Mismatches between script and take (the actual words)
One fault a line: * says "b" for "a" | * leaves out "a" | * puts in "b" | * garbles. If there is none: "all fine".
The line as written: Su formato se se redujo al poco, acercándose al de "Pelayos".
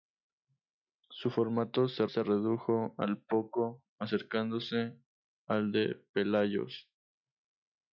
all fine